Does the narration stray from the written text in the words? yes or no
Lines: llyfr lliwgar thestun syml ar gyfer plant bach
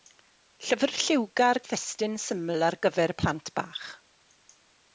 no